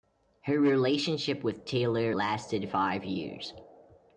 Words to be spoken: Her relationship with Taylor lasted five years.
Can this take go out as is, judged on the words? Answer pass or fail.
pass